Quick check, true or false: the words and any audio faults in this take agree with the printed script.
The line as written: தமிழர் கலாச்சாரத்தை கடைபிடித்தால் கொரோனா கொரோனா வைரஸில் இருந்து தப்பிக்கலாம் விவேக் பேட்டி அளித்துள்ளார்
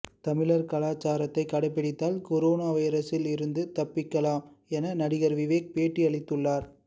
false